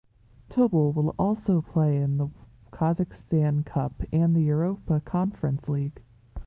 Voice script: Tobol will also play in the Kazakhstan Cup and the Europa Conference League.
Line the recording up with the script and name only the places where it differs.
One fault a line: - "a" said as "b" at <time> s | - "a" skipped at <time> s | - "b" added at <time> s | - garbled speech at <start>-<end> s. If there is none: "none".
none